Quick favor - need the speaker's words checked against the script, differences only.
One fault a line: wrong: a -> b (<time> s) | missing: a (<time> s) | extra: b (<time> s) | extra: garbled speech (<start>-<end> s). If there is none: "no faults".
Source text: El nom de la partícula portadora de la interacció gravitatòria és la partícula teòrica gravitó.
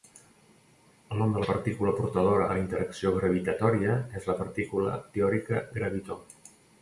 missing: de (2.5 s)